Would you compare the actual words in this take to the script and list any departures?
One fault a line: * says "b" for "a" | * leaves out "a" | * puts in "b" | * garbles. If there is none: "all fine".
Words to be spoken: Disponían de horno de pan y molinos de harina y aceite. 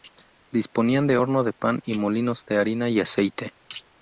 all fine